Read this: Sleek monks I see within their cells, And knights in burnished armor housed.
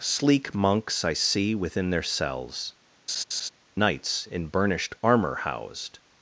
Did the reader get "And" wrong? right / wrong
wrong